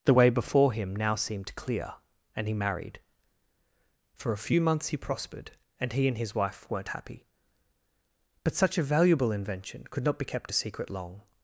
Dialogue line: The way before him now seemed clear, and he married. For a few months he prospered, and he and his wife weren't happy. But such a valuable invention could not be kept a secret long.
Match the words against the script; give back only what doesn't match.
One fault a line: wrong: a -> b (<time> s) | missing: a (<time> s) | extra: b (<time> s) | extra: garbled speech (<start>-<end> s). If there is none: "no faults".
no faults